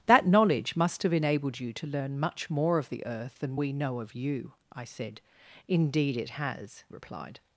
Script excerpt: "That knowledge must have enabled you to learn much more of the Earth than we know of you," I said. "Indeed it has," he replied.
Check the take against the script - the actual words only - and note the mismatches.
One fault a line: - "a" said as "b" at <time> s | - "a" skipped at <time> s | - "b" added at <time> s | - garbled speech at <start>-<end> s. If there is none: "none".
- "he" skipped at 6.8 s